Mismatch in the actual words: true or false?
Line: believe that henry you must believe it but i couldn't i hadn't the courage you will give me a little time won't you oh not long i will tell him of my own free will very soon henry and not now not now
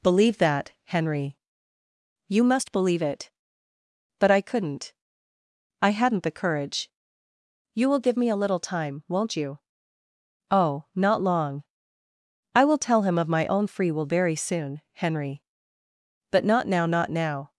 true